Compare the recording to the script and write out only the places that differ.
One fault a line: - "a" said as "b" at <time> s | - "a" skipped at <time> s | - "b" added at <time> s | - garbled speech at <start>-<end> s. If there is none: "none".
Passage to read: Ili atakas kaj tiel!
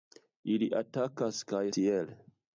none